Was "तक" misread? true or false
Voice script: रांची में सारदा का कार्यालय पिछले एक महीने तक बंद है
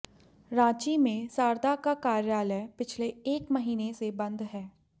true